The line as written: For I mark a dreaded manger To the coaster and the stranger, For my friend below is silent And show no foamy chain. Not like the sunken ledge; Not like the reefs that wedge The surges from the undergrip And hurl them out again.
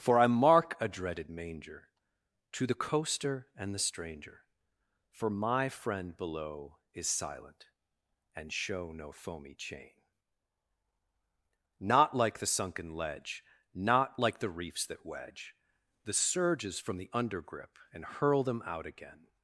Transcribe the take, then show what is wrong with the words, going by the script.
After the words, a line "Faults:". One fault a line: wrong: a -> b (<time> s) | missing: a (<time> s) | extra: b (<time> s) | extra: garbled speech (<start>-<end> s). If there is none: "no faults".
For I mark a dreaded manger To the coaster and the stranger, For my friend below is silent And show no foamy chain. Not like the sunken ledge; Not like the reefs that wedge The surges from the undergrip And hurl them out again.
Faults:
no faults